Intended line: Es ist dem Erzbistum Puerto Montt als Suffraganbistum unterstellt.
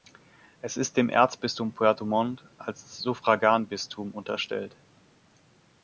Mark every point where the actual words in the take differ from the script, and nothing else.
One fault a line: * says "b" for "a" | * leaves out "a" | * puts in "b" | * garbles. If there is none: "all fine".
all fine